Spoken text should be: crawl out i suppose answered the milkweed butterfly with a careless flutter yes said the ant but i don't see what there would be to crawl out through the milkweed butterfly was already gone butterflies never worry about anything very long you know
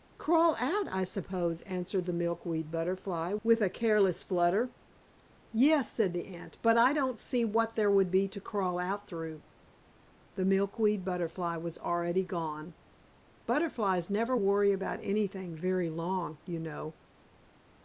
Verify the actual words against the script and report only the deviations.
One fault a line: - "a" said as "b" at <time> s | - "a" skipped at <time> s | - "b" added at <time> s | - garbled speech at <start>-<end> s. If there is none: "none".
none